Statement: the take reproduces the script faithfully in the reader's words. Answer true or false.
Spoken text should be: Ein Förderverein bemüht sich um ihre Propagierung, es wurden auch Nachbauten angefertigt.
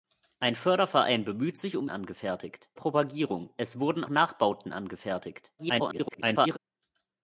false